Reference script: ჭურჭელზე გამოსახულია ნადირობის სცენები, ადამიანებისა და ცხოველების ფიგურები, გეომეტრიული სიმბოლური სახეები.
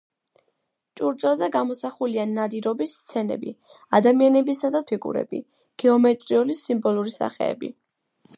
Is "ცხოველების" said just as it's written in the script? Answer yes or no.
no